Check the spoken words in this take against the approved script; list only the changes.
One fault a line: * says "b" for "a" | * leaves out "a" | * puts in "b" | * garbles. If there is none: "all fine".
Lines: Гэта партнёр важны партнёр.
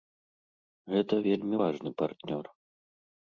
* says "вельмі" for "партнёр"